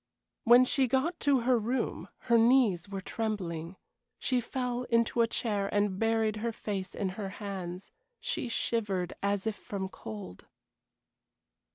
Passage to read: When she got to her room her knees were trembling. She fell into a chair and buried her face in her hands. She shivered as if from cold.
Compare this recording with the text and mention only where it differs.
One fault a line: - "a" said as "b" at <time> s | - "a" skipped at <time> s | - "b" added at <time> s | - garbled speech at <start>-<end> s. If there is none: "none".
none